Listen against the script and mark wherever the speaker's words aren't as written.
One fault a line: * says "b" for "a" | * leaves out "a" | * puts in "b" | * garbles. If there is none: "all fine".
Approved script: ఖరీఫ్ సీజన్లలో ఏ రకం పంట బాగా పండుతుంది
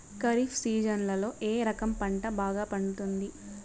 all fine